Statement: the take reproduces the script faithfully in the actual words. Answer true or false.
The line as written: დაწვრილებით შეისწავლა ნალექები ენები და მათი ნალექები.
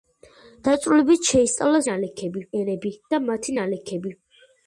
true